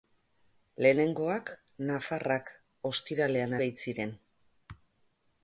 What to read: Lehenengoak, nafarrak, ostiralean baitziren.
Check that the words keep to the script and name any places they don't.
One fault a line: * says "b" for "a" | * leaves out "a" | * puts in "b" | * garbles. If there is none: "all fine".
all fine